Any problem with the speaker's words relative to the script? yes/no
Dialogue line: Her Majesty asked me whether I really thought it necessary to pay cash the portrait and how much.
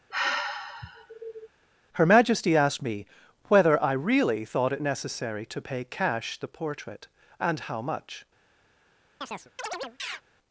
no